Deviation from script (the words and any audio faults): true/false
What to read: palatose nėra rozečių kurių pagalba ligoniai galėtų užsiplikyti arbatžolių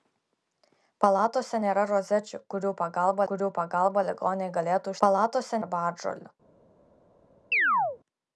true